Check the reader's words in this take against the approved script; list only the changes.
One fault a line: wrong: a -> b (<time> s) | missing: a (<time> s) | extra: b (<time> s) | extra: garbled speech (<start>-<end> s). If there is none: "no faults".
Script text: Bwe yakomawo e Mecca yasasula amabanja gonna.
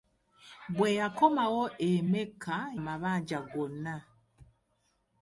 missing: yasasula (2.6 s)